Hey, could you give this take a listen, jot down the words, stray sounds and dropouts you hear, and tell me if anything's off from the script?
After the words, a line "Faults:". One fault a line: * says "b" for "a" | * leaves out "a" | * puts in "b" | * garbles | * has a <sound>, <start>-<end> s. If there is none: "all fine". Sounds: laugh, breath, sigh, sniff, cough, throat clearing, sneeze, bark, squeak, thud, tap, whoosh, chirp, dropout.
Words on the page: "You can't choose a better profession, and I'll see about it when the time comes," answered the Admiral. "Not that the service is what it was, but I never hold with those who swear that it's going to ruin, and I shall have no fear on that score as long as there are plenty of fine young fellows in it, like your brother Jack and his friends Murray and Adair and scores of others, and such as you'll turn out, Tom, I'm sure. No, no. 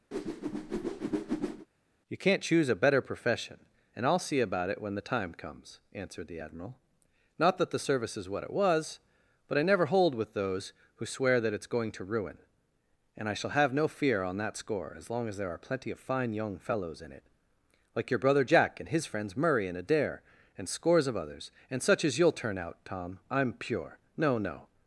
"You can't choose a better profession, and I'll see about it when the time comes," answered the Admiral. "Not that the service is what it was, but I never hold with those who swear that it's going to ruin, and I shall have no fear on that score as long as there are plenty of fine young fellows in it, like your brother Jack and his friends Murray and Adair and scores of others, and such as you'll turn out, Tom, I'm pure. No, no.
Faults:
* has a whoosh, 0.1-1.7 s
* says "pure" for "sure"